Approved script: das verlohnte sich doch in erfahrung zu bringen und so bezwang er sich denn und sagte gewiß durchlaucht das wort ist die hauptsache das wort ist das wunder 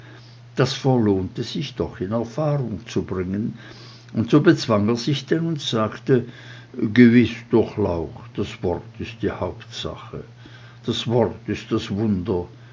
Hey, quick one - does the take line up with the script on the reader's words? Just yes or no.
yes